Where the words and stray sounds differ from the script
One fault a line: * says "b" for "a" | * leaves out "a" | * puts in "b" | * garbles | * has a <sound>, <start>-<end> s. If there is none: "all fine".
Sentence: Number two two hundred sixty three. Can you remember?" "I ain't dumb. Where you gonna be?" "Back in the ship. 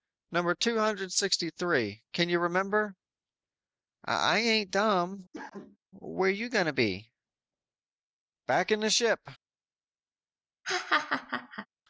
* leaves out "two"
* has a cough, 5.3-5.8 s
* has a laugh, 10.6-11.7 s